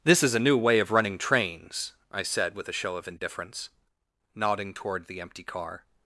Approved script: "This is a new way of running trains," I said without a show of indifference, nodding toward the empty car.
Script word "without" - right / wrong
wrong